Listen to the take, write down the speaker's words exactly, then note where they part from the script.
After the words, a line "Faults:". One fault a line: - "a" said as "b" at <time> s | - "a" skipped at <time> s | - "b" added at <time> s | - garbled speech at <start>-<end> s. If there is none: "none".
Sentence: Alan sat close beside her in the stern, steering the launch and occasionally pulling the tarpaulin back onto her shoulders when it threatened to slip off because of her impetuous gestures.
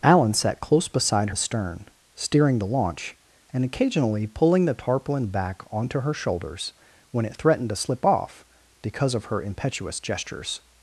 Alan sat close beside the stern, steering the launch and occasionally pulling the tarpaulin back onto her shoulders when it threatened to slip off because of her impetuous gestures.
Faults:
- "her in" skipped at 1.3 s